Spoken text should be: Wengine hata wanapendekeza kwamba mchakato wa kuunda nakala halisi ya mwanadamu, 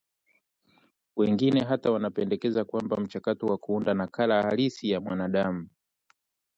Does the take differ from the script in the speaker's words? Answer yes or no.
no